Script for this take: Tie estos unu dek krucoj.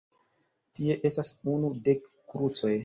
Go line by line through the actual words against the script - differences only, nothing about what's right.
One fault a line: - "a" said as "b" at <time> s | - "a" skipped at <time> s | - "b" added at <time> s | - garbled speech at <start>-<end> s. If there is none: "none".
- "estos" said as "estas" at 1.1 s